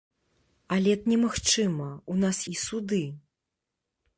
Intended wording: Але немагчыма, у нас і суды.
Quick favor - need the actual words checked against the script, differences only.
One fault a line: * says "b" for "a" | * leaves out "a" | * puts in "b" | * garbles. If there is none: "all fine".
all fine